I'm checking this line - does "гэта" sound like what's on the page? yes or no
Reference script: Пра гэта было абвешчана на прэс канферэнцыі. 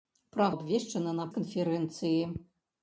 no